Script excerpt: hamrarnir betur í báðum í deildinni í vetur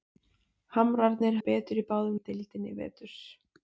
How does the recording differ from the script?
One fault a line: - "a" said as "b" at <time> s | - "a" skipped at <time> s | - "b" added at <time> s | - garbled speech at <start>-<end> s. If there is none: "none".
none